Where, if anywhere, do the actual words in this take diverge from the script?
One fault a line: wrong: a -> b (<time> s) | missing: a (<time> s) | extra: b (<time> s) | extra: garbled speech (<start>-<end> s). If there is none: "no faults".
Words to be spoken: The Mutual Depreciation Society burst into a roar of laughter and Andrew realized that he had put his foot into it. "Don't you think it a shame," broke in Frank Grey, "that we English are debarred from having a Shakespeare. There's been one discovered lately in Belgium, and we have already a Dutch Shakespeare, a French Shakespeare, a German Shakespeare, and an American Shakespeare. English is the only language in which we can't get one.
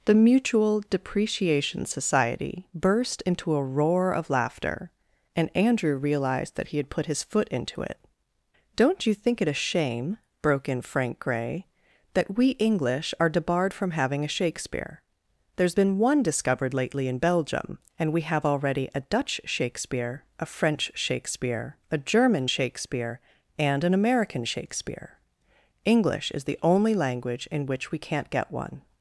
no faults